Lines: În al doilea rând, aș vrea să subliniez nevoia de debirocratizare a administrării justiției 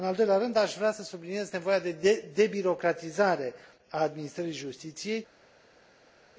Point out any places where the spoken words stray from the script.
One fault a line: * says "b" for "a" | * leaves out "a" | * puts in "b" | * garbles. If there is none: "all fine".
all fine